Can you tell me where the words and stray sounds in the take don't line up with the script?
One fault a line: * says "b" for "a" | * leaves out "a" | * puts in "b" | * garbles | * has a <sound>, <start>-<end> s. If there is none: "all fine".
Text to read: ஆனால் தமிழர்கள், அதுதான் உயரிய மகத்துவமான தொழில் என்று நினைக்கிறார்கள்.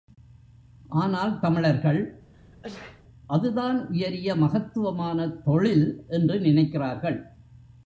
* has a sneeze, 2.3-3.0 s